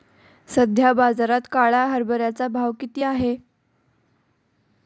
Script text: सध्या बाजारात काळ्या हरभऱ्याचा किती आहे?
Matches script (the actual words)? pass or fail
fail